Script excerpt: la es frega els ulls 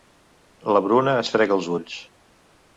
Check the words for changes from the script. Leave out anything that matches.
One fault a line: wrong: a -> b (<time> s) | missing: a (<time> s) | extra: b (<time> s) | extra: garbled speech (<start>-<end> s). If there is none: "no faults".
extra: bruna (0.9 s)